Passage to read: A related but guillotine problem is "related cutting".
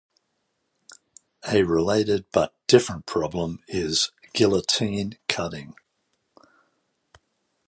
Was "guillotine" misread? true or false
true